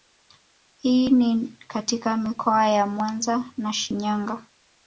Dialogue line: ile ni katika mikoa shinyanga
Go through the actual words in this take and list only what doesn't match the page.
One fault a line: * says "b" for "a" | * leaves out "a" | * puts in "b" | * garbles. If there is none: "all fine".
* says "hii" for "ile"
* puts in "ya mwanza na"